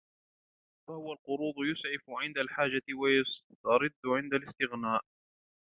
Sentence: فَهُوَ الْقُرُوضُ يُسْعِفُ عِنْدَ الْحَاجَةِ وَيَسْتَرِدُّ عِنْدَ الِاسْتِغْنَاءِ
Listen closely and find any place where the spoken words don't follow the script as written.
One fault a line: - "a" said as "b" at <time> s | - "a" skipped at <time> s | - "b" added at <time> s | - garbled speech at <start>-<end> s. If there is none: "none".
none